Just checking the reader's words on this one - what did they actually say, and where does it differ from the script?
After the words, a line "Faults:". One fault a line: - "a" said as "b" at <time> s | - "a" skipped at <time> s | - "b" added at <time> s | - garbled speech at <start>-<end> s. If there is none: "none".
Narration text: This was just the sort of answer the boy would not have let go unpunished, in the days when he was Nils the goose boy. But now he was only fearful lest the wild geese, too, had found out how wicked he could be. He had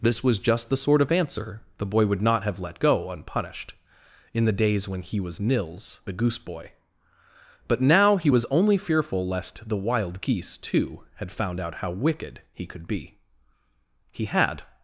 This was just the sort of answer the boy would not have let go unpunished, in the days when he was Nils the goose boy. But now he was only fearful lest the wild geese, too, had found out how wicked he could be. He had
Faults:
none